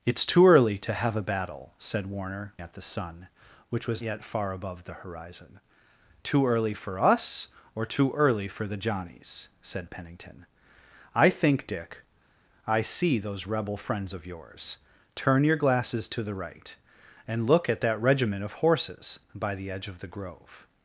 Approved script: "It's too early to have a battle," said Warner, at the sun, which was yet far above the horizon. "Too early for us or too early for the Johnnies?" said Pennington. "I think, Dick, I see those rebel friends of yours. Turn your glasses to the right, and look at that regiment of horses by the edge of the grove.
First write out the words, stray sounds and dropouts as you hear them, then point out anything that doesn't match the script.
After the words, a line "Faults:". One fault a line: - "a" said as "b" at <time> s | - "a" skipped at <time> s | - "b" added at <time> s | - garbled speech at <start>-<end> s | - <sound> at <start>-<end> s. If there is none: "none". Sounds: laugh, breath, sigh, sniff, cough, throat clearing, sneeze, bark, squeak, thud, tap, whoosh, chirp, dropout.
"It's too early to have a battle," said Warner, at the sun, which was yet far above the horizon. "Too early for us or too early for the Johnnies?" said Pennington. "I think, Dick, I see those rebel friends of yours. Turn your glasses to the right, and look at that regiment of horses by the edge of the grove.
Faults:
none